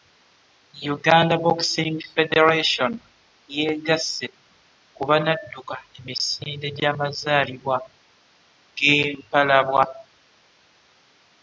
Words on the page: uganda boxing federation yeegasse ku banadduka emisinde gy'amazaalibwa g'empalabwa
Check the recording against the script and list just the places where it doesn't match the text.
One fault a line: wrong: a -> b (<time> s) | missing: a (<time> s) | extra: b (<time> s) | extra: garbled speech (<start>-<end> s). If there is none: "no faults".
no faults